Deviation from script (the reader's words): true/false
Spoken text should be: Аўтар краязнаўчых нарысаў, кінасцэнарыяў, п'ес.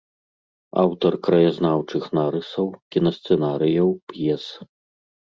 false